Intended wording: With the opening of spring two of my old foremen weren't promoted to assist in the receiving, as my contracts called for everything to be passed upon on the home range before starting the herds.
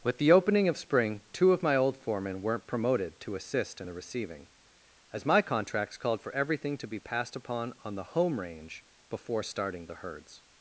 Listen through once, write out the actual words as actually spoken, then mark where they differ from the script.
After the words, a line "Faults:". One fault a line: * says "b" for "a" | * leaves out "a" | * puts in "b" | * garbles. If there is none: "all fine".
With the opening of spring two of my old foremen weren't promoted to assist in the receiving, as my contracts called for everything to be passed upon on the home range before starting the herds.
Faults:
all fine